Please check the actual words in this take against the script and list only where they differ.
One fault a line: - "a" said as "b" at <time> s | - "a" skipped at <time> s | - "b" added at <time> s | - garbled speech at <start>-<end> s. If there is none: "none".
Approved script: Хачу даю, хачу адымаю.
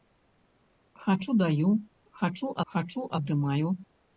- "хачу" added at 2.7 s